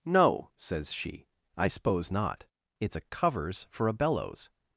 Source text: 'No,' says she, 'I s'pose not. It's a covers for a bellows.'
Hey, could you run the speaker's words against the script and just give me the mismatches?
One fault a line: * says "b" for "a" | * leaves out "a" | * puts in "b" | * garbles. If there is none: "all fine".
all fine